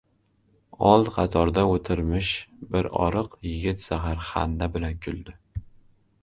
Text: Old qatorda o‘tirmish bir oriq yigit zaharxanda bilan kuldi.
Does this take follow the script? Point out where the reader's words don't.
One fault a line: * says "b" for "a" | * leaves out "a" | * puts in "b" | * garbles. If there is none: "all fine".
all fine